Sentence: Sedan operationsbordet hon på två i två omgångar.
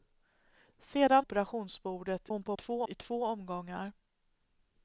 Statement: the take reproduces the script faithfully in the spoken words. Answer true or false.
true